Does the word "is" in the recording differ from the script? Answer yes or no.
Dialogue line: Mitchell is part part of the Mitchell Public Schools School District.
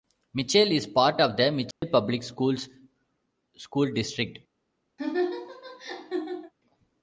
no